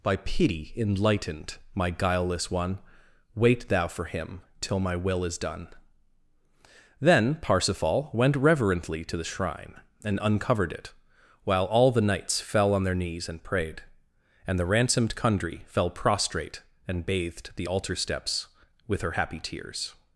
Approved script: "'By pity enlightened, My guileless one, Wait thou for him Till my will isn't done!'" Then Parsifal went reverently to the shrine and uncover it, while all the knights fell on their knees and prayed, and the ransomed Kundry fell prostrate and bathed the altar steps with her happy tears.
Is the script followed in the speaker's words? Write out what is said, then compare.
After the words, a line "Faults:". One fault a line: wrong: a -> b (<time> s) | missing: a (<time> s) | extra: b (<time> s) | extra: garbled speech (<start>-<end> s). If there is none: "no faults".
"'By pity enlightened, My guileless one, Wait thou for him Till my will is done!'" Then Parsifal went reverently to the shrine and uncovered it, while all the knights fell on their knees and prayed, and the ransomed Kundry fell prostrate and bathed the altar steps with her happy tears.
Faults:
wrong: isn't -> is (5.2 s)
wrong: uncover -> uncovered (10.2 s)